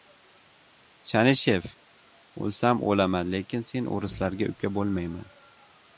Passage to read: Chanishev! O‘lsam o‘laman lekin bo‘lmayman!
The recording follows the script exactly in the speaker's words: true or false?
false